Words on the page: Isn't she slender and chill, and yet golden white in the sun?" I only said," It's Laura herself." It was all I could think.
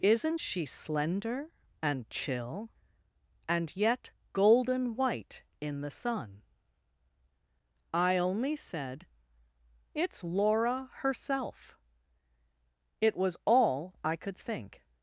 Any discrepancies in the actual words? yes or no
no